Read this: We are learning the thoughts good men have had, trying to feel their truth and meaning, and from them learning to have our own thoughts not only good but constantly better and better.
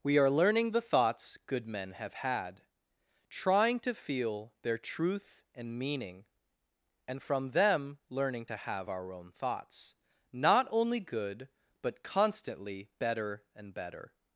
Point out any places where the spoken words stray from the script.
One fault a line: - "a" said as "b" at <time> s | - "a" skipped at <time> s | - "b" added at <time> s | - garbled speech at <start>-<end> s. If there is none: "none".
none